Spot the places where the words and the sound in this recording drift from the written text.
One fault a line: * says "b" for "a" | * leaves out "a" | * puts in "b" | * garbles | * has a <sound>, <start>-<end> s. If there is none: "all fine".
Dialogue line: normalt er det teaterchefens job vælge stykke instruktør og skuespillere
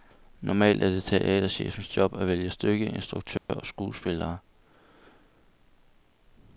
* puts in "at"
* has a dropout, 3.4-3.5 s